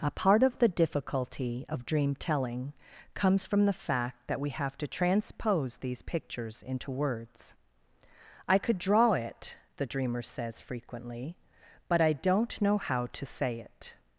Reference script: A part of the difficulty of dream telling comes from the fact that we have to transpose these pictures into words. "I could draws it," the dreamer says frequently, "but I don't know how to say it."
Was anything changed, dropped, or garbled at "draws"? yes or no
yes